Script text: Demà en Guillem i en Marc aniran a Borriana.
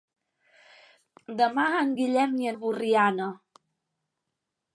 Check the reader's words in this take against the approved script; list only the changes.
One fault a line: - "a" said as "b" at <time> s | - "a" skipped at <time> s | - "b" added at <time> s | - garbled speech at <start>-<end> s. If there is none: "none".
- "en Marc aniran" skipped at 2.5 s